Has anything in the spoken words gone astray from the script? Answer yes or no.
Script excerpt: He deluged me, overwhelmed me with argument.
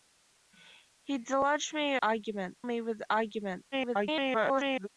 yes